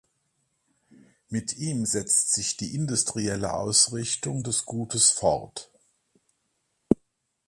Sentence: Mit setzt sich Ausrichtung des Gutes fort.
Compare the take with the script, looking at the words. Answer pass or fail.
fail